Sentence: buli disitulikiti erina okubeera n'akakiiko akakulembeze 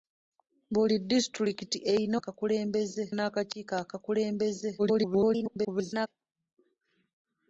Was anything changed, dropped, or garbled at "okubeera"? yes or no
yes